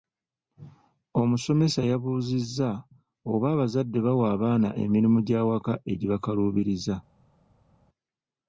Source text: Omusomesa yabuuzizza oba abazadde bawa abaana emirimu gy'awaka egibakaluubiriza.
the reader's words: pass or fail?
pass